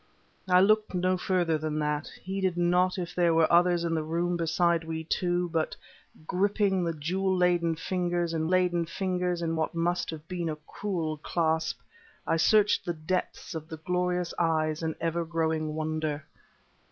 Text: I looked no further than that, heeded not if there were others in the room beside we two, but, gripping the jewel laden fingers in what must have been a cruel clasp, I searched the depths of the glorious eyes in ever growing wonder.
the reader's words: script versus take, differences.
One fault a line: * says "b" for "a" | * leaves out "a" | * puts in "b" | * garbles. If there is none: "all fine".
* puts in "laden fingers in"